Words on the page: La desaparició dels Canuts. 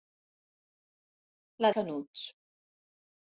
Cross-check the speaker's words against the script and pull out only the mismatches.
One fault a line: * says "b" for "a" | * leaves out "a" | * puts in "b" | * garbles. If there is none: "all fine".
* leaves out "desaparició dels"